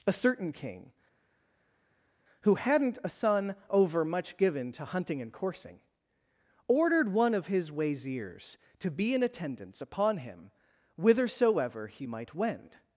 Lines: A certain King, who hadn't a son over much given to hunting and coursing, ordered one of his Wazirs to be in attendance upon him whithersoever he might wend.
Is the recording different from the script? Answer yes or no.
no